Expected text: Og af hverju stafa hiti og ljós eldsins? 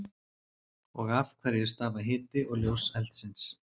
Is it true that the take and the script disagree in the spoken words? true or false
false